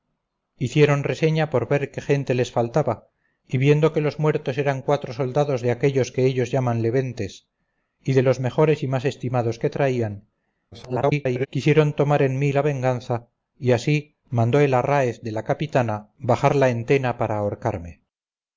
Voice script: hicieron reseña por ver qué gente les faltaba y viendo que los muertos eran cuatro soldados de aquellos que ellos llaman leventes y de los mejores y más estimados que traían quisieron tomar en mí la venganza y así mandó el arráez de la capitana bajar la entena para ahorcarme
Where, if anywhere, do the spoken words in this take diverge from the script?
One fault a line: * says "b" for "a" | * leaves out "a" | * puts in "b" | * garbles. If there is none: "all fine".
* garbles